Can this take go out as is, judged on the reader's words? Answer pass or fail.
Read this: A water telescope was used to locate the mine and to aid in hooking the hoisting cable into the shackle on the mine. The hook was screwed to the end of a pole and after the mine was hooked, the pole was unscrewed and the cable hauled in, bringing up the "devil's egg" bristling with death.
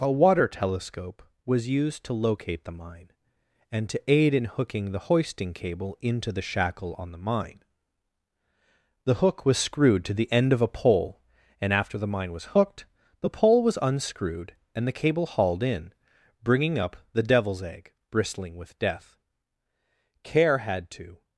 fail